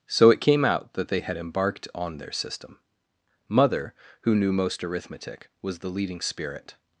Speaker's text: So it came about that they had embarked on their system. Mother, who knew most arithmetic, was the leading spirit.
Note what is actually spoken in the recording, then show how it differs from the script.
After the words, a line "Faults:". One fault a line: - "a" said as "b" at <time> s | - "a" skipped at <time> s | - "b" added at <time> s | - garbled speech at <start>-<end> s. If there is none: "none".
So it came out that they had embarked on their system. Mother, who knew most arithmetic, was the leading spirit.
Faults:
- "about" said as "out" at 0.7 s